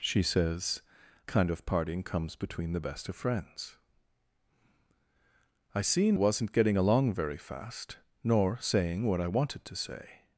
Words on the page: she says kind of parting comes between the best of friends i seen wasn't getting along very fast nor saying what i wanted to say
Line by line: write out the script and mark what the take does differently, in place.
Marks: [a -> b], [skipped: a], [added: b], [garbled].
she says kind of parting comes between the best of friends i seen wasn't getting along very fast nor saying what i wanted to say